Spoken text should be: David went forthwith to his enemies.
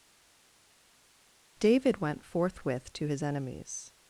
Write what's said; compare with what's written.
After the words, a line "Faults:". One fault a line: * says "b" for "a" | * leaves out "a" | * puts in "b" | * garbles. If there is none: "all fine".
David went forthwith to his enemies.
Faults:
all fine